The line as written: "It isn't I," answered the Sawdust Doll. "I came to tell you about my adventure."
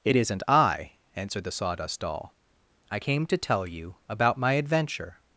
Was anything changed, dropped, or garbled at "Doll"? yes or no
no